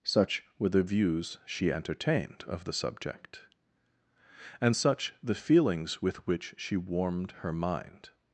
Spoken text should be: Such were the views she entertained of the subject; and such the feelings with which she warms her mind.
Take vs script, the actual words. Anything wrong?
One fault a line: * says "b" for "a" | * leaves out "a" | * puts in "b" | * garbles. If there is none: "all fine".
* says "warmed" for "warms"